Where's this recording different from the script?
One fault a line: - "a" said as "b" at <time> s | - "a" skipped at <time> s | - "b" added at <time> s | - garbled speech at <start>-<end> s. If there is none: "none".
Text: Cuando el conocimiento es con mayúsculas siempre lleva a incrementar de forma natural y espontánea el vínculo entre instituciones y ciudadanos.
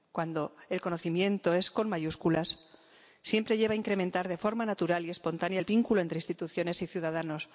none